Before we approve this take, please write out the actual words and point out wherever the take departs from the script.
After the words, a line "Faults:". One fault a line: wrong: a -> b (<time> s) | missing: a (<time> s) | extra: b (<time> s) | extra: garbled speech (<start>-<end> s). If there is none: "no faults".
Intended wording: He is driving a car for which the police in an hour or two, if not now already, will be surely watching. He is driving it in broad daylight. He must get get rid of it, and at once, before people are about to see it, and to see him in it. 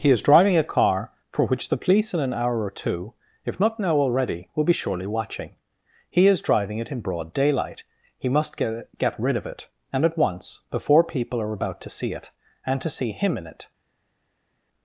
He is driving a car for which the police in an hour or two, if not now already, will be surely watching. He is driving it in broad daylight. He must get get rid of it, and at once, before people are about to see it, and to see him in it.
Faults:
no faults